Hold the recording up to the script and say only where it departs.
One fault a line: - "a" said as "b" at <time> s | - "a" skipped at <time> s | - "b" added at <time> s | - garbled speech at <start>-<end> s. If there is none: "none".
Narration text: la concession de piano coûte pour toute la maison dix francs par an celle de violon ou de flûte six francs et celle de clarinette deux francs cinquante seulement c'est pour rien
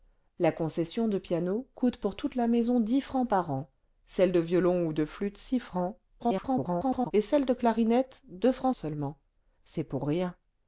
- garbled speech at 6.2-7.1 s
- "cinquante" skipped at 8.7 s